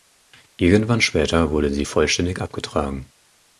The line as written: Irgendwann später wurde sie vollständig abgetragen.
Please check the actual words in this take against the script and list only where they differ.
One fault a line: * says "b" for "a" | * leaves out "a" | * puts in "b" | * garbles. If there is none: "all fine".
all fine